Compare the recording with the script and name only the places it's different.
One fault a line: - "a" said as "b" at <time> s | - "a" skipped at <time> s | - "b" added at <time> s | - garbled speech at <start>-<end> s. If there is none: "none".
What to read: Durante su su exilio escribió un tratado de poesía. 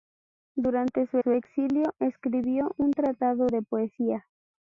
none